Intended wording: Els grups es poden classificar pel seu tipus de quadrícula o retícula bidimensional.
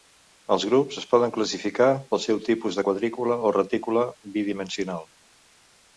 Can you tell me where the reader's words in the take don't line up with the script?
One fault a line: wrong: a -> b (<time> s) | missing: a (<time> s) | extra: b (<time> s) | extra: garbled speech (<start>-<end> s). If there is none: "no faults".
no faults